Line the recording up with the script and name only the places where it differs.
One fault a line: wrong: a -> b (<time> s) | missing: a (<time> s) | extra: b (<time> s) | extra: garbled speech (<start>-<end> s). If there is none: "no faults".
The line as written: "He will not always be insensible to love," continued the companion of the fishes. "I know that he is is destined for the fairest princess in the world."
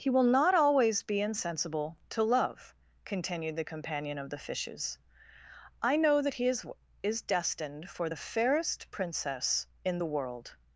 no faults